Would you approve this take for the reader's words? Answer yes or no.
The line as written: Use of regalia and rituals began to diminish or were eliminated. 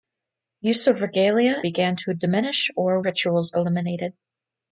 no